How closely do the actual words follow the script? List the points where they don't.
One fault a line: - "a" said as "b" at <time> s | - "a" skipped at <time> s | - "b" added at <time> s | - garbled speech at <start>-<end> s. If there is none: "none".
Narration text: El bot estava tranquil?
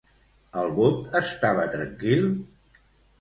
none